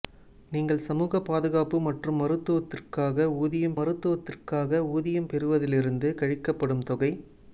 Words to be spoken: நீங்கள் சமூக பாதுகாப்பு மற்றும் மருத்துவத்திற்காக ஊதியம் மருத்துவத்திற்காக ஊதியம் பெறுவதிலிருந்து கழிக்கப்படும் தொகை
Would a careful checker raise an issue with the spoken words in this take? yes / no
no